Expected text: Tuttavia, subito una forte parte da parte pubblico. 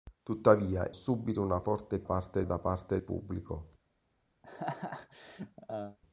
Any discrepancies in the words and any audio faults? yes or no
yes